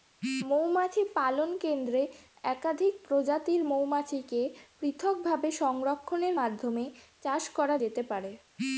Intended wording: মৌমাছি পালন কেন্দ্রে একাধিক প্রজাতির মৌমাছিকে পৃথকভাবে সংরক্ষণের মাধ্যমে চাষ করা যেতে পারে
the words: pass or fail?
pass